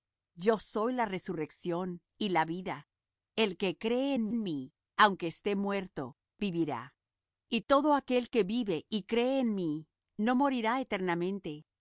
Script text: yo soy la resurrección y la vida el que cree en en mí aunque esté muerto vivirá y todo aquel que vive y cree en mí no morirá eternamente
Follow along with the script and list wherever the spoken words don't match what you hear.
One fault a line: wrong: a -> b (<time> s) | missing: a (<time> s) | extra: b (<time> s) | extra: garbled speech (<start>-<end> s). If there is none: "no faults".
no faults